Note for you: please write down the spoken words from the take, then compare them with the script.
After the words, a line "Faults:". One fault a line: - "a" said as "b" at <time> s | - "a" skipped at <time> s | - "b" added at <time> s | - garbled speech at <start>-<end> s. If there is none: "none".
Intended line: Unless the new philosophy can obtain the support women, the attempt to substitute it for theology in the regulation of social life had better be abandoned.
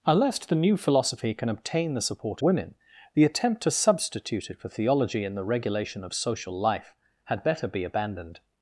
Unless the new philosophy can obtain the support women, the attempt to substitute it for theology in the regulation of social life had better be abandoned.
Faults:
none